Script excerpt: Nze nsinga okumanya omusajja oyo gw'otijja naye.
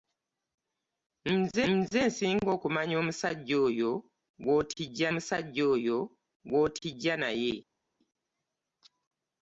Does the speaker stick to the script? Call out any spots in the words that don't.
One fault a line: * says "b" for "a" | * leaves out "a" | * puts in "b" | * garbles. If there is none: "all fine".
* puts in "nze"
* puts in "omusajja oyo gw'otijja"